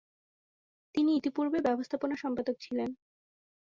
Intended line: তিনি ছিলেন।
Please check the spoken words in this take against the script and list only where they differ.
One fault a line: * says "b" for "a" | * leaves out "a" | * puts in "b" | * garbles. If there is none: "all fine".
* puts in "ইতিপূর্বে ব্যবস্থাপনা সম্পাদক"